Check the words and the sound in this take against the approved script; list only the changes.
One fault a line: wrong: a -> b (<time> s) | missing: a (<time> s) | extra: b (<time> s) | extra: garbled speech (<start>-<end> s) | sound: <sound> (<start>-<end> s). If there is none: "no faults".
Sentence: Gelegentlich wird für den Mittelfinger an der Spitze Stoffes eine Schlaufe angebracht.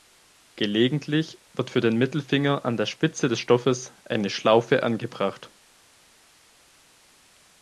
extra: des (3.3 s)